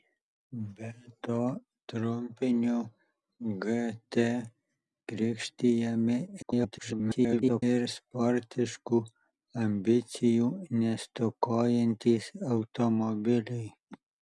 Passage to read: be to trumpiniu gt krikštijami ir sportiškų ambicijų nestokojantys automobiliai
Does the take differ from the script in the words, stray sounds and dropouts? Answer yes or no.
yes